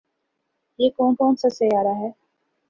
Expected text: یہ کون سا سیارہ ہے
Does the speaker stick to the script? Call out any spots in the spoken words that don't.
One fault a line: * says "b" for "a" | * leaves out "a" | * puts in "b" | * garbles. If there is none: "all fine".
* puts in "کون"